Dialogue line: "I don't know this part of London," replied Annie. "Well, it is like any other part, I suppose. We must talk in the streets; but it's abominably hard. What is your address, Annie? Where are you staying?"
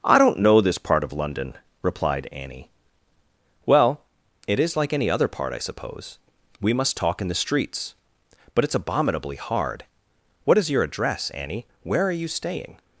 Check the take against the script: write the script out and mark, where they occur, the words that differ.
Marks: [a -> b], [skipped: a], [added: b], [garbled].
"I don't know this part of London," replied Annie. "Well, it is like any other part, I suppose. We must talk in the streets; but it's abominably hard. What is your address, Annie? Where are you staying?"